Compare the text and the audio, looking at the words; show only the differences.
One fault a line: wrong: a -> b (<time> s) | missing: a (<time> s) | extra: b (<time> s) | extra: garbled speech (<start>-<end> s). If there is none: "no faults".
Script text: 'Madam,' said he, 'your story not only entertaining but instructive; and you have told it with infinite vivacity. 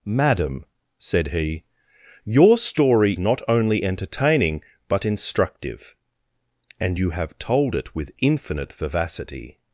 no faults